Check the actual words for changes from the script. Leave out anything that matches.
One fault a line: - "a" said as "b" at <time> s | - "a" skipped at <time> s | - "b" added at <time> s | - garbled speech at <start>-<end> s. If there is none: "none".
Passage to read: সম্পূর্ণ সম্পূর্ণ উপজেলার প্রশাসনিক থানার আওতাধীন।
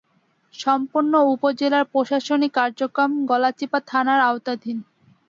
- "সম্পূর্ণ" skipped at 1.1 s
- "কার্যক্রম গলাচিপা" added at 2.5 s